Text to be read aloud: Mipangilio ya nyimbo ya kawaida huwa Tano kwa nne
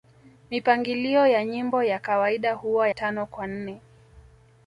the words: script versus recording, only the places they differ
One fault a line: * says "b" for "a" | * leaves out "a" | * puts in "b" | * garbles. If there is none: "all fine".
all fine